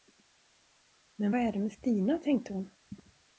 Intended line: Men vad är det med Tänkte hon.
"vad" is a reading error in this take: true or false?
false